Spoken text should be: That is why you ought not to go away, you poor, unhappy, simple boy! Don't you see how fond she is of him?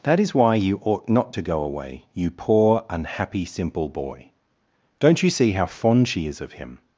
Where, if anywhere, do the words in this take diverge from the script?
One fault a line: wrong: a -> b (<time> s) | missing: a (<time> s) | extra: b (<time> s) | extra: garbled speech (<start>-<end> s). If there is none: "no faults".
no faults